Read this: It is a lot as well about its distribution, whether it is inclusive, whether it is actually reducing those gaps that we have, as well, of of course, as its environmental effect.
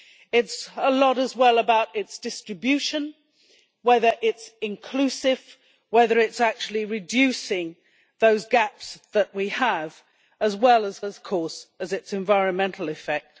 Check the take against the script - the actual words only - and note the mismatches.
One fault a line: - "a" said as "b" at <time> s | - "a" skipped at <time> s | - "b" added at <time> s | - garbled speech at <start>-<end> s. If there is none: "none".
none